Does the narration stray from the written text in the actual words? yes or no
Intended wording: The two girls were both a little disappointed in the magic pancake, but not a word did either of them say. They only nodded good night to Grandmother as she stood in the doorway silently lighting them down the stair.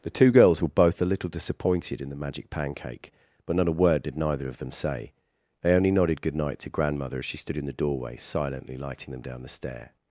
yes